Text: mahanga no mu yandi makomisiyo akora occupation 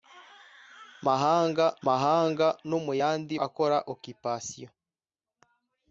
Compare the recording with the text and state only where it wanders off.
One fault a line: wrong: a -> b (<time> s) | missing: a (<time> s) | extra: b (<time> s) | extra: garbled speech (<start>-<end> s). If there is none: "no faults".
extra: mahanga (1.9 s)
missing: makomisiyo (3.3 s)